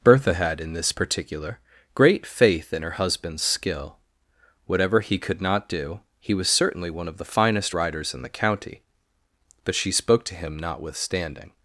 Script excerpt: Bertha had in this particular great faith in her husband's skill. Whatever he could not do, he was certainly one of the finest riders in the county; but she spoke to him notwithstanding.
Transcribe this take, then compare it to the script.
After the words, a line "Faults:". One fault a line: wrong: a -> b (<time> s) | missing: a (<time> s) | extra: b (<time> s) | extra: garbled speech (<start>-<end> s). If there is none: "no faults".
Bertha had in this particular great faith in her husband's skill. Whatever he could not do, he was certainly one of the finest riders in the county; but she spoke to him notwithstanding.
Faults:
no faults